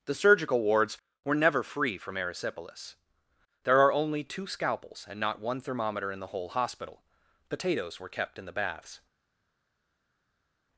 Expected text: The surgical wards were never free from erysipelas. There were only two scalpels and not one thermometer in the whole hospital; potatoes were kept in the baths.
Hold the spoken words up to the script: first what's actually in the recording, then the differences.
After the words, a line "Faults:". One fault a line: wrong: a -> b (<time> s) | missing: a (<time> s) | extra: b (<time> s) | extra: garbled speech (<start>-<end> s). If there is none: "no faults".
The surgical wards were never free from erysipelas. There are only two scalpels and not one thermometer in the whole hospital; potatoes were kept in the baths.
Faults:
wrong: were -> are (3.8 s)